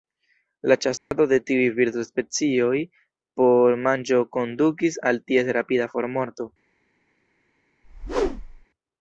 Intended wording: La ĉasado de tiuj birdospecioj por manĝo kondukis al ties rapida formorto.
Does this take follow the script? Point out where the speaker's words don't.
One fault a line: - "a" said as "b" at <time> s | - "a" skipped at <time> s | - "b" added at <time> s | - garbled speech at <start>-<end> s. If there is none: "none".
none